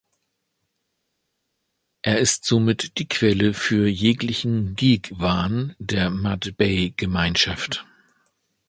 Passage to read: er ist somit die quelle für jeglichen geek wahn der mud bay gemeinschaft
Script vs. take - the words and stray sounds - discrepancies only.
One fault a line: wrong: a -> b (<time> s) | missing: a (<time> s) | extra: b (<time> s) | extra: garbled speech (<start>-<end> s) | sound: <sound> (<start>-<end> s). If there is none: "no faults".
no faults